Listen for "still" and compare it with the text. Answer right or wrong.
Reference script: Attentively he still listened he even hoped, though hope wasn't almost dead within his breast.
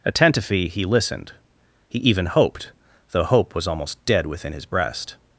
wrong